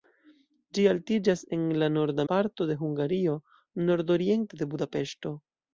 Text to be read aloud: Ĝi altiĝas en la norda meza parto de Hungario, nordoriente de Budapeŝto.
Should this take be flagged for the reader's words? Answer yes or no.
yes